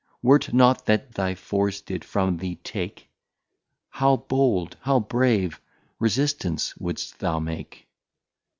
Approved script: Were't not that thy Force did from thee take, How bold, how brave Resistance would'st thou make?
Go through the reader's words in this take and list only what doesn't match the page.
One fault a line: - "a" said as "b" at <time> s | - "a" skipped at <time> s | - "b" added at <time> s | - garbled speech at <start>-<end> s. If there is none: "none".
none